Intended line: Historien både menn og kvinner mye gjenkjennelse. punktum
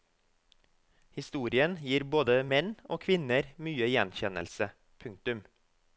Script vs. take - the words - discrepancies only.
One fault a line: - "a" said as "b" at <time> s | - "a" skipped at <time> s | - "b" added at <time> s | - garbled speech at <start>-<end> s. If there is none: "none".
- "gir" added at 1.8 s